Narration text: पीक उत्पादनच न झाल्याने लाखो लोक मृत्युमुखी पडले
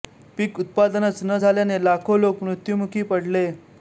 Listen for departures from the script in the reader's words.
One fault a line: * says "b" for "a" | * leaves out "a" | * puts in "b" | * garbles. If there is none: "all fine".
all fine